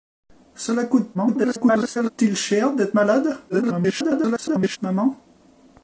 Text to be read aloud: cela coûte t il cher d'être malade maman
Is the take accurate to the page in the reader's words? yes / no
no